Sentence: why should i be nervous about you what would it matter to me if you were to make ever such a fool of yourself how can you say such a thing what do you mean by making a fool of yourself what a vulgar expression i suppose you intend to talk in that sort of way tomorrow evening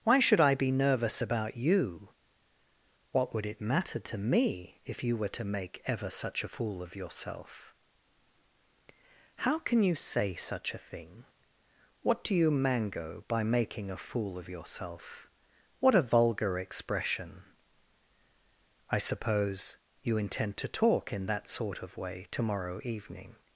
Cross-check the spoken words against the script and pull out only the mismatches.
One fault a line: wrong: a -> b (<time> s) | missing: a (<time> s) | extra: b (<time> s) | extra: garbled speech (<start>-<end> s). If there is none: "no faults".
wrong: mean -> mango (12.5 s)